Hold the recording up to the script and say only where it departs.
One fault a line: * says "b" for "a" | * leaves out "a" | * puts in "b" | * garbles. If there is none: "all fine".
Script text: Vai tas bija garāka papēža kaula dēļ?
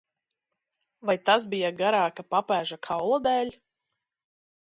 all fine